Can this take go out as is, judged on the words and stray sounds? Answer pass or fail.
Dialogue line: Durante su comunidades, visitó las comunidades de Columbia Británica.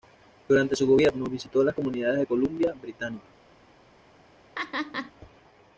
fail